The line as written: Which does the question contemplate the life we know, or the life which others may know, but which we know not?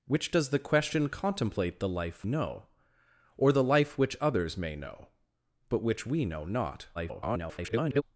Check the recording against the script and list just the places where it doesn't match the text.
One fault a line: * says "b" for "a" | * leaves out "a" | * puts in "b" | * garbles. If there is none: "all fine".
* leaves out "we"
* garbles